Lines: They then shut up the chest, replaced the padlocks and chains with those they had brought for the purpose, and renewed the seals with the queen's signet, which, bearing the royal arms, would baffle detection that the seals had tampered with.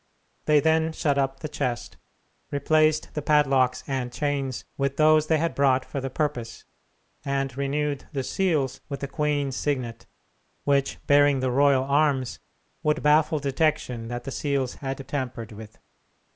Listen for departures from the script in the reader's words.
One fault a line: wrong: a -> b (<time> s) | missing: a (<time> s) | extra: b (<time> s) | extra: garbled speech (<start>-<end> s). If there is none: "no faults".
no faults